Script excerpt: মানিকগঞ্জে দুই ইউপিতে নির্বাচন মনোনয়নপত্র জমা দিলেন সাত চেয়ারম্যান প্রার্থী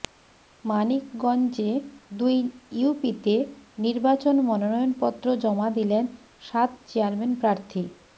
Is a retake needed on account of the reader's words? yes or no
no